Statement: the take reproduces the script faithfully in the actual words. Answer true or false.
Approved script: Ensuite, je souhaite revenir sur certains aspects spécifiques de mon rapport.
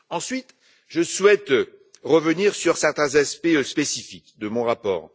true